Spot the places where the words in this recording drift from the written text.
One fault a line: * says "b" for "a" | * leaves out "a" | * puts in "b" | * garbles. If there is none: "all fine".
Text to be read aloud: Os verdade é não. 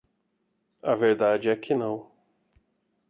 * says "A" for "Os"
* puts in "que"